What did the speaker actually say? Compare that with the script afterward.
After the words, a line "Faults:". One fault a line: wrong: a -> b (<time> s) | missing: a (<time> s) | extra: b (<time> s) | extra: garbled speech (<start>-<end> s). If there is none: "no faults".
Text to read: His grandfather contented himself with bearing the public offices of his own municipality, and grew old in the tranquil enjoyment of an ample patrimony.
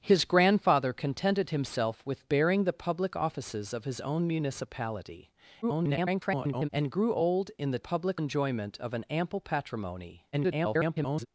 His grandfather contented himself with bearing the public offices of his own municipality, [garbled] and grew old in the public enjoyment of an ample patrimony. [garbled]
Faults:
extra: garbled speech (5.6-6.7 s)
wrong: tranquil -> public (7.8 s)
extra: garbled speech (10.3-11.3 s)